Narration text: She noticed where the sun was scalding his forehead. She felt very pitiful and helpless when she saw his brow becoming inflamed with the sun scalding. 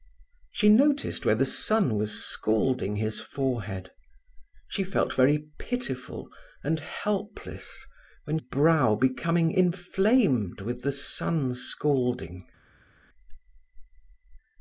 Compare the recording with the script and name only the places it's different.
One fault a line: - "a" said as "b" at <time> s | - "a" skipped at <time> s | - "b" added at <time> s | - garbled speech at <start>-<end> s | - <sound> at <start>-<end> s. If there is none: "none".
- "she saw his" skipped at 8.4 s